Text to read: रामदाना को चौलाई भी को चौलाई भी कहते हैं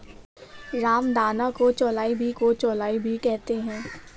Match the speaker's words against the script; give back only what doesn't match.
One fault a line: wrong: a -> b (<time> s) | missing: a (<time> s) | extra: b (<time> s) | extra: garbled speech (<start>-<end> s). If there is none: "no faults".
no faults